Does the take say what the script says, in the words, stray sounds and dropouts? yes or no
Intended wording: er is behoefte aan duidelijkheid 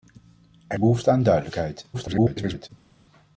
no